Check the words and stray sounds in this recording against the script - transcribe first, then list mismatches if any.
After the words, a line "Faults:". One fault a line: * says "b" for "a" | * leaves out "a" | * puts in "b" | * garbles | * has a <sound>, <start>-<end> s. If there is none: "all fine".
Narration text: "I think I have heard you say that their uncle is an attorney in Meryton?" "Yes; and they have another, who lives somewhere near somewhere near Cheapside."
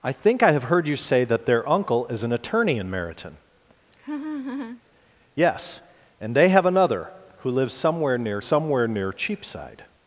"I think I have heard you say that their uncle is an attorney in Meryton?" "Yes; and they have another, who lives somewhere near somewhere near Cheapside."
Faults:
* has a laugh, 3.9-4.8 s